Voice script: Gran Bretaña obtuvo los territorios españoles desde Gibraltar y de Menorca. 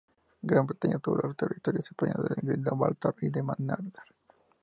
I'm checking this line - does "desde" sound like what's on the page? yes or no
no